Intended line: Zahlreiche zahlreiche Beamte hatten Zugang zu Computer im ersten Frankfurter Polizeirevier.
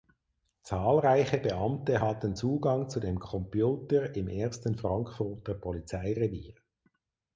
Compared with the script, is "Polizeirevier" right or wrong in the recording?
right